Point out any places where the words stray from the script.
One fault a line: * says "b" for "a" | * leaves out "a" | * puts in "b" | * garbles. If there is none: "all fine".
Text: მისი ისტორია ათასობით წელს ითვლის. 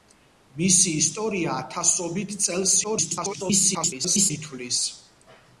* garbles